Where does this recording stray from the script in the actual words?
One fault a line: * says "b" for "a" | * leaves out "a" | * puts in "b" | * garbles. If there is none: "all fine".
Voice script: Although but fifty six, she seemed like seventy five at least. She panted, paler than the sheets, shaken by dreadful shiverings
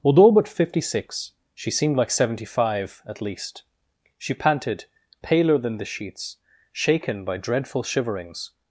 all fine